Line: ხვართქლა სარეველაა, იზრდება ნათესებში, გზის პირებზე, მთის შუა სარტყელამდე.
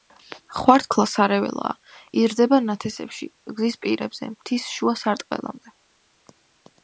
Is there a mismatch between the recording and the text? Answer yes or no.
no